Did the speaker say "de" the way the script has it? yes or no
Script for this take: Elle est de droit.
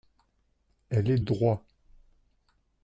no